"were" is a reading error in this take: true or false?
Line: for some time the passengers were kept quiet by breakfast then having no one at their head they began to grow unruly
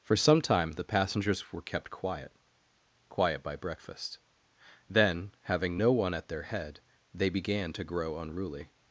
false